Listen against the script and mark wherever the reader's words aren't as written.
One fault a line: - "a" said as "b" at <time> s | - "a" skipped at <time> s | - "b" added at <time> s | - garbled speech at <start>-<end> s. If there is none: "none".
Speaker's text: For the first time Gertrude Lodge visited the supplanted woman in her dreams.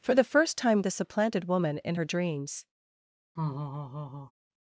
- "Gertrude Lodge visited" skipped at 0.8 s